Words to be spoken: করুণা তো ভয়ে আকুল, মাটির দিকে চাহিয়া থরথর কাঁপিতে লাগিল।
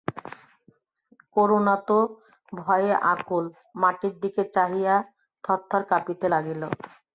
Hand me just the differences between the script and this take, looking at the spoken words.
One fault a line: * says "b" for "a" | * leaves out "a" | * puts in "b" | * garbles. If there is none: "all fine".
all fine